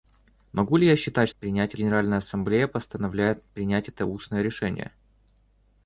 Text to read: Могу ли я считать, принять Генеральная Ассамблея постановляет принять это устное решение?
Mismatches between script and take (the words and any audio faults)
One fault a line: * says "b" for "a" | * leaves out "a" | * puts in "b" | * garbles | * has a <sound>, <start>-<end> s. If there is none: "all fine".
all fine